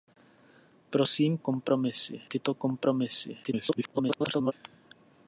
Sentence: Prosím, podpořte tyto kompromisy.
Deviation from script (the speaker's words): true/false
true